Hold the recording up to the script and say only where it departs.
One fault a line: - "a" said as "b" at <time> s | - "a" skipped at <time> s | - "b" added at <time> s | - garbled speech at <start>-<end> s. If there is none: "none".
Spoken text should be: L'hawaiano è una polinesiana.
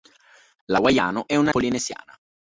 none